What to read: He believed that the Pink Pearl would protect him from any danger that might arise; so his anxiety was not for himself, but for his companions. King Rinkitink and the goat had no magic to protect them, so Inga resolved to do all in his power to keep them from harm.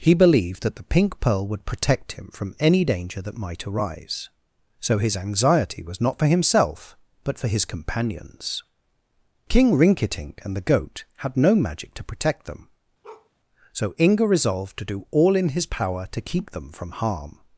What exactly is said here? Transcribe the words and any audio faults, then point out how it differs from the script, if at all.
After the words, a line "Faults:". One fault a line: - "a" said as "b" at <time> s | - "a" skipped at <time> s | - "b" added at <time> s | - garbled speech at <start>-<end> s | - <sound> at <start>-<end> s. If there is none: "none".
He believed that the Pink Pearl would protect him from any danger that might arise; so his anxiety was not for himself, but for his companions. King Rinkitink and the goat had no magic to protect them, so Inga resolved to do all in his power to keep them from harm.
Faults:
- bark at 13.0-13.3 s